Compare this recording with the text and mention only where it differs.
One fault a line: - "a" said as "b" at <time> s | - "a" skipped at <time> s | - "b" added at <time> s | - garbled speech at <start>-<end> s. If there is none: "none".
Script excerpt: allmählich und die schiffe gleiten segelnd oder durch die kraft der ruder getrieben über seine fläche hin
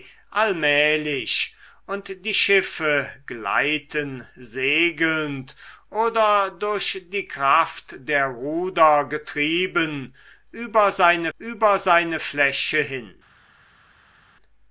- "über seine" added at 11.4 s